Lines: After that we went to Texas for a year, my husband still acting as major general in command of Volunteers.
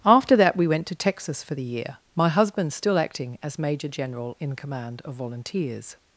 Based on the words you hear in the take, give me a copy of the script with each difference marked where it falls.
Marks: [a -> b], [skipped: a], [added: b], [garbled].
After that we went to Texas for [a -> the] year, my husband still acting as major general in command of Volunteers.